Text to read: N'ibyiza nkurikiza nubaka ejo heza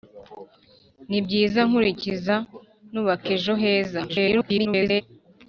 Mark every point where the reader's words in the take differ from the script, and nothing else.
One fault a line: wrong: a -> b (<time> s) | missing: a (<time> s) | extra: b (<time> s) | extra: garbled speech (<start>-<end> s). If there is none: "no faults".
extra: garbled speech (4.1-5.0 s)